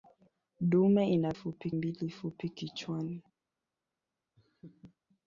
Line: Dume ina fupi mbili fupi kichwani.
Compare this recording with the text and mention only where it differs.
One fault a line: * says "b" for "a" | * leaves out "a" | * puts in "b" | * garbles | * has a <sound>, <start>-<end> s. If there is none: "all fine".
* has a laugh, 4.4-5.0 s